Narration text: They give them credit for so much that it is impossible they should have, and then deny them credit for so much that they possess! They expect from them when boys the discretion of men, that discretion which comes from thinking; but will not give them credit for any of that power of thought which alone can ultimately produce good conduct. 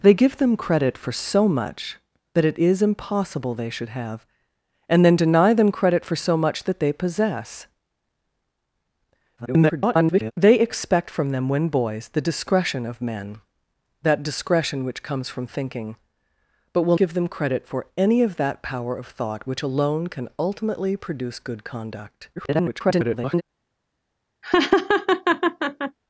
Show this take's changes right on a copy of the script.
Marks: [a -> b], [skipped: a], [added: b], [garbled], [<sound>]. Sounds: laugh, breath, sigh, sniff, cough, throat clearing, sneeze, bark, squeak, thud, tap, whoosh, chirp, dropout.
They give them credit for so much that it is impossible they should have, and then deny them credit for so much that they possess! [garbled] They expect from them when boys the discretion of men, that discretion which comes from thinking; but will [skipped: not] give them credit for any of that power of thought which alone can ultimately produce good conduct. [garbled] [laugh]